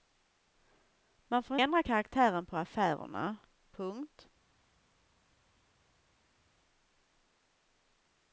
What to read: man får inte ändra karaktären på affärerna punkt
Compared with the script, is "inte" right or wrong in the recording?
wrong